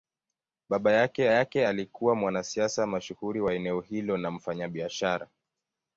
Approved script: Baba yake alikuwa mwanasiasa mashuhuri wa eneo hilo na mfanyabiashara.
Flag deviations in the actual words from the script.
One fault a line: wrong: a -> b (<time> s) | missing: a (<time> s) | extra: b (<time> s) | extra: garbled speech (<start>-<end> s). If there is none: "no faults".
extra: yake (1.3 s)